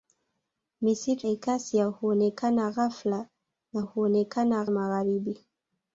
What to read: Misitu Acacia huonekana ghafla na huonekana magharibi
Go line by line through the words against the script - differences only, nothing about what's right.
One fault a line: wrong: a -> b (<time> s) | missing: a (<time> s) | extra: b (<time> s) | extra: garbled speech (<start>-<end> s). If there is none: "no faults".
no faults